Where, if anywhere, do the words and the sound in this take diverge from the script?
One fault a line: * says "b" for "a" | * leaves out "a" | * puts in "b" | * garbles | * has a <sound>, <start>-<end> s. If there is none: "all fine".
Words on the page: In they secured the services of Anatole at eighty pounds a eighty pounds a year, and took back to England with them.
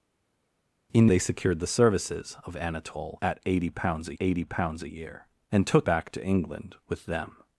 all fine